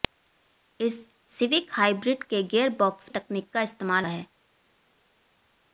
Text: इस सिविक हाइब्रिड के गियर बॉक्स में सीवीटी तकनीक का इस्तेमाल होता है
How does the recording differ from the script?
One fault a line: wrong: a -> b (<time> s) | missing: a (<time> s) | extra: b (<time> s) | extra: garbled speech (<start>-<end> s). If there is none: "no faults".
missing: में सीवीटी (3.1 s)
missing: होता (4.1 s)